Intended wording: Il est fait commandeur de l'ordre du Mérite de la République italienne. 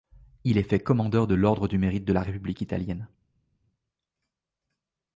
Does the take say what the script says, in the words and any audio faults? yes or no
yes